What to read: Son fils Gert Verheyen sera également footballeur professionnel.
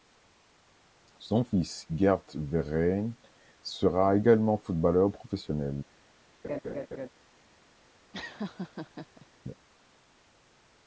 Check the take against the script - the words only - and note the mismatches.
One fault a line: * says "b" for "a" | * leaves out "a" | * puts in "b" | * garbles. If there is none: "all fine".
all fine